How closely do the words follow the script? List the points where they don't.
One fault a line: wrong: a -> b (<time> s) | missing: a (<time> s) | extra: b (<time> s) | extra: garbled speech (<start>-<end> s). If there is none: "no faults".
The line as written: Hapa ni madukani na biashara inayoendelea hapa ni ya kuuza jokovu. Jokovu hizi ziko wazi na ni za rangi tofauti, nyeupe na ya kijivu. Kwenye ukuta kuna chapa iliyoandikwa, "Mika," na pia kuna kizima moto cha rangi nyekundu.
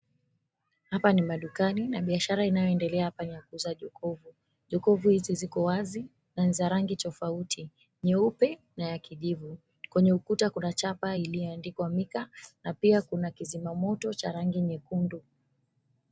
no faults